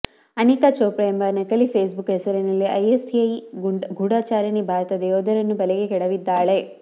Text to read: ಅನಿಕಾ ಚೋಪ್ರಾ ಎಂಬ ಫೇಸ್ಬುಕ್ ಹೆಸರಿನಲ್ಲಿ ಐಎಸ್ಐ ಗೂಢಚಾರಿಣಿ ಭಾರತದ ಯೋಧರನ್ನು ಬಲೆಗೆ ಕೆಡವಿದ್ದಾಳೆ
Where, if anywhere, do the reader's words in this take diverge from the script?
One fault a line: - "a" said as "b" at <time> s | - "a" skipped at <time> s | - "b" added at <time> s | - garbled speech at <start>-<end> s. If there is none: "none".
- "ನಕಲಿ" added at 1.3 s